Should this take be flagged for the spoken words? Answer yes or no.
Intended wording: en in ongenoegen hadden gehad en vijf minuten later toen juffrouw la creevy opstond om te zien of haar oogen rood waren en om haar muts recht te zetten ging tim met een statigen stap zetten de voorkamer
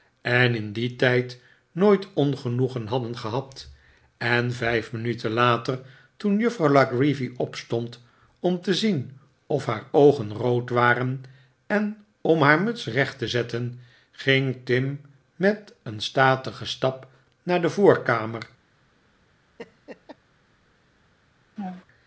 yes